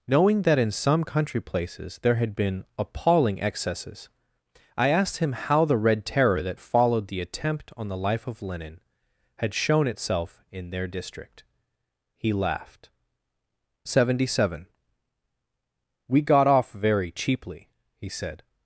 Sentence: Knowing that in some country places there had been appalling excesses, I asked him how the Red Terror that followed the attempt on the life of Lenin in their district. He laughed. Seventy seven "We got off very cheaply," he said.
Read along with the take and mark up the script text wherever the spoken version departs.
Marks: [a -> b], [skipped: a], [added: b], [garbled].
Knowing that in some country places there had been appalling excesses, I asked him how the Red Terror that followed the attempt on the life of Lenin [added: had shown itself] in their district. He laughed. Seventy seven "We got off very cheaply," he said.